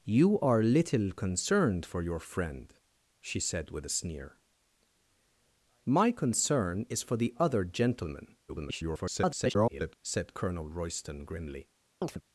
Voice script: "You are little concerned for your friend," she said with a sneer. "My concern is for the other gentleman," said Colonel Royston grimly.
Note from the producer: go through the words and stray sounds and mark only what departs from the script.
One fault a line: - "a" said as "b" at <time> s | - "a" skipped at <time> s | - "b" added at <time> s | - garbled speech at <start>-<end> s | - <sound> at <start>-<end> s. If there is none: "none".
- garbled speech at 8.5-10.0 s
- chirp at 12.0-12.2 s